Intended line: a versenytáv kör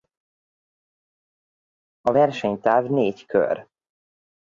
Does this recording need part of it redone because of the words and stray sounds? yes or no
yes